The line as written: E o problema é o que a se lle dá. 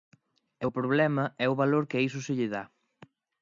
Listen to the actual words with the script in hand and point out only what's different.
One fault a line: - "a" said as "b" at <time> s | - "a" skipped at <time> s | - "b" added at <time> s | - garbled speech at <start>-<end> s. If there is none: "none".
- "valor" added at 1.6 s
- "iso" added at 2.1 s